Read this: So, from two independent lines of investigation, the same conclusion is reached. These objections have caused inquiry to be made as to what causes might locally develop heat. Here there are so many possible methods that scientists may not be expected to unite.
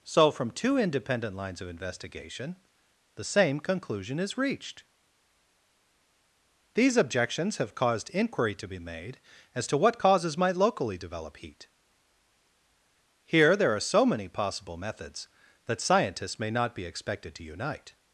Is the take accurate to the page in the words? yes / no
yes